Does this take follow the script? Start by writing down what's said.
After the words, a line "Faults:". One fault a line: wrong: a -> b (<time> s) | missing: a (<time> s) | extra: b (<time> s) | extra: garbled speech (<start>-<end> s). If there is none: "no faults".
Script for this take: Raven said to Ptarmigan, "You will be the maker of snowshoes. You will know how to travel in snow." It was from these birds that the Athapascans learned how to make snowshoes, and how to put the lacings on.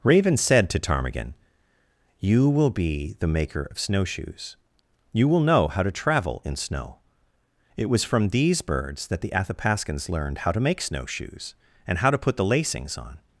Raven said to Ptarmigan, "You will be the maker of snowshoes. You will know how to travel in snow." It was from these birds that the Athapascans learned how to make snowshoes, and how to put the lacings on.
Faults:
no faults